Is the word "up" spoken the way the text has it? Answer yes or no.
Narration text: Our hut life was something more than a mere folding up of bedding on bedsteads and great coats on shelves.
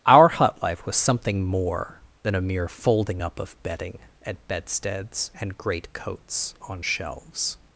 yes